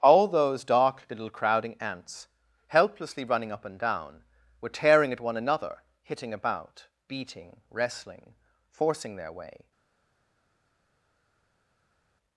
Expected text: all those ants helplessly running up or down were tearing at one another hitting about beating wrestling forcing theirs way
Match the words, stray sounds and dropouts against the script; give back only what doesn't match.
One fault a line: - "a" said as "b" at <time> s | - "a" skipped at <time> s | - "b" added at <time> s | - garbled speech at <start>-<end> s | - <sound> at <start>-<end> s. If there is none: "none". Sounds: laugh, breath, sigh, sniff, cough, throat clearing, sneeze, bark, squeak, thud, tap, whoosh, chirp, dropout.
- "dark little crowding" added at 0.6 s
- "or" said as "and" at 3.6 s
- "theirs" said as "their" at 9.2 s